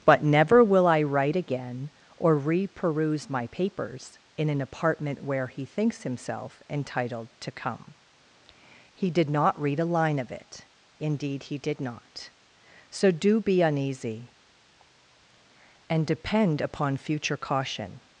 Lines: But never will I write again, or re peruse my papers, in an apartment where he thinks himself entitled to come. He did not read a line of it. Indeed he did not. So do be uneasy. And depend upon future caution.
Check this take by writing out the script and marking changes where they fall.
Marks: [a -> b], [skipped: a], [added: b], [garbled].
But never will I write again, or re peruse my papers, in an apartment where he thinks himself entitled to come. He did not read a line of it. Indeed he did not. So do be uneasy. And depend upon future caution.